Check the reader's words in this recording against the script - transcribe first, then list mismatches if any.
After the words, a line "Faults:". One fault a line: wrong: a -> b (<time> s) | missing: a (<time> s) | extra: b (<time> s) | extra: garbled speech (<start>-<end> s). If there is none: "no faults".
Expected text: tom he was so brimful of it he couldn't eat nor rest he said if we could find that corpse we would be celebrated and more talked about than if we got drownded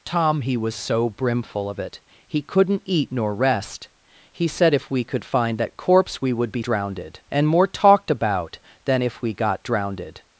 tom he was so brimful of it he couldn't eat nor rest he said if we could find that corpse we would be drownded and more talked about than if we got drownded
Faults:
wrong: celebrated -> drownded (6.6 s)